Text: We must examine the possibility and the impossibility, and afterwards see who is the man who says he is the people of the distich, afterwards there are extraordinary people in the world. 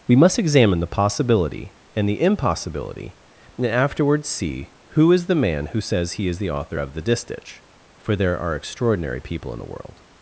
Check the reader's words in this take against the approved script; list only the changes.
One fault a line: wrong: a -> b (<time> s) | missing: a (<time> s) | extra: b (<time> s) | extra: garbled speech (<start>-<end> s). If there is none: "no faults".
wrong: people -> author (6.5 s)
wrong: afterwards -> for (8.0 s)